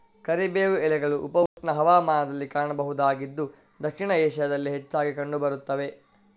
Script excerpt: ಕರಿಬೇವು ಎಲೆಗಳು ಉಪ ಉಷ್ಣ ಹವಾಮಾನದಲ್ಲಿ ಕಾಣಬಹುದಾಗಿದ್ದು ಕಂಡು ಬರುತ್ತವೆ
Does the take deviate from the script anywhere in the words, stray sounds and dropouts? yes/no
yes